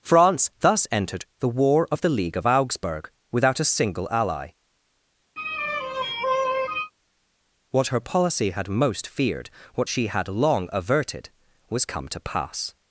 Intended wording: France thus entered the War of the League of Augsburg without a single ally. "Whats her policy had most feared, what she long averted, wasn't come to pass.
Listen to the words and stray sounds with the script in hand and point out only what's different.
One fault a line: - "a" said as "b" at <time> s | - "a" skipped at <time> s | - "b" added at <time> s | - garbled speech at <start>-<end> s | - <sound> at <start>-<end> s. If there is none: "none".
- sigh at 5.4-6.9 s
- "Whats" said as "What" at 7.7 s
- "had" added at 10.1 s
- "wasn't" said as "was" at 11.7 s